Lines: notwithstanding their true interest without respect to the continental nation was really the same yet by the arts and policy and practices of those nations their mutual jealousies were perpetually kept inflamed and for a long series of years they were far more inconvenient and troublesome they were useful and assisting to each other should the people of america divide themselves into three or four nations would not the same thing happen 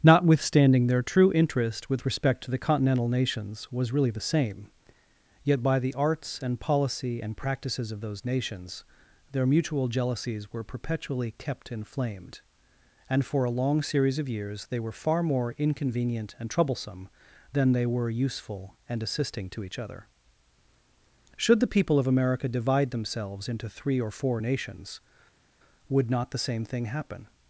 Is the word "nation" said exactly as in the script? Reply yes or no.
no